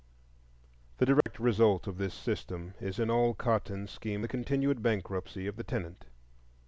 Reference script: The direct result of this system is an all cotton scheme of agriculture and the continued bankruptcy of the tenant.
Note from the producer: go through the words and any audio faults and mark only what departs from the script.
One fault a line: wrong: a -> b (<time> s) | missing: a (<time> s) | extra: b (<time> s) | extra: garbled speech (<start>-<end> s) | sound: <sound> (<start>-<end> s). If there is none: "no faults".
sound: dropout (1.2-1.3 s)
missing: of agriculture and (4.2 s)